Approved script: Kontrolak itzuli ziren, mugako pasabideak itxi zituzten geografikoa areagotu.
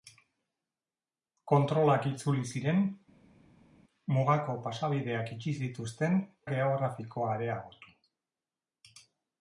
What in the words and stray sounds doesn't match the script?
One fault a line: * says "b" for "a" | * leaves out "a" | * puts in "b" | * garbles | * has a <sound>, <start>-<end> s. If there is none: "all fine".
all fine